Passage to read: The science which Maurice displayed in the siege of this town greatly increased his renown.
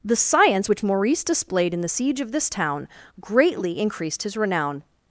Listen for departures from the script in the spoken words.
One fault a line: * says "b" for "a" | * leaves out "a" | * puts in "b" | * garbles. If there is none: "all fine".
all fine